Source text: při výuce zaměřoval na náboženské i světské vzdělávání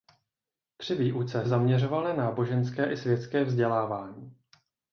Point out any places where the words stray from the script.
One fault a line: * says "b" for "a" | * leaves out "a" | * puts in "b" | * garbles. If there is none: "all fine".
all fine